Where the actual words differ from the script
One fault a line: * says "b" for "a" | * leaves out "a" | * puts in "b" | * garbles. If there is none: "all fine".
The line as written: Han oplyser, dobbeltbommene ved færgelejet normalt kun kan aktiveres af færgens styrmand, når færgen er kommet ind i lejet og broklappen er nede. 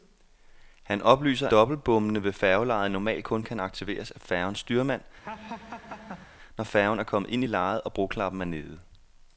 all fine